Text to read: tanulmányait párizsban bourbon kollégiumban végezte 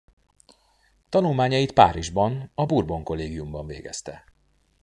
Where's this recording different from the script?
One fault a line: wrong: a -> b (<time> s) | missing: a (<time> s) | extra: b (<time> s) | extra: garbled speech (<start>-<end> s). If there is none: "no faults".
extra: a (2.5 s)